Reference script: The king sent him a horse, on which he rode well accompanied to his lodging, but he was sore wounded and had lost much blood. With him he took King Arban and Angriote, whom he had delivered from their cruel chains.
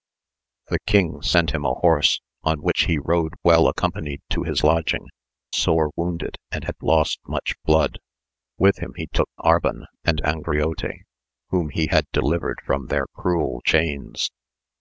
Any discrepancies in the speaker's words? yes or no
yes